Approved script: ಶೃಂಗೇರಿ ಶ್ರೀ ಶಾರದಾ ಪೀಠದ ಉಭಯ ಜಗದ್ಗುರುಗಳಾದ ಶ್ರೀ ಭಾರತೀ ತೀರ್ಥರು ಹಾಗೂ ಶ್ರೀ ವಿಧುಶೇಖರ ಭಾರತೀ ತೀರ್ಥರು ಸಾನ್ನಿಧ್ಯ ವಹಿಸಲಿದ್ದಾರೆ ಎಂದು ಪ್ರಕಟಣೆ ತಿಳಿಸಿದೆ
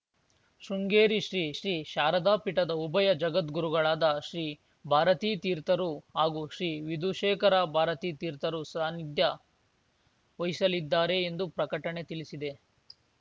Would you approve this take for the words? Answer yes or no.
no